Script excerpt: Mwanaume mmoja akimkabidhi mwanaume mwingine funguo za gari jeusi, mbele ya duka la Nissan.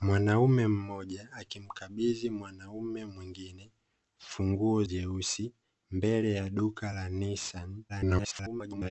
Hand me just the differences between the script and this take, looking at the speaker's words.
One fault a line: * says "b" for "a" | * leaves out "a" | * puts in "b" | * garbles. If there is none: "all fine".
* leaves out "za gari"
* garbles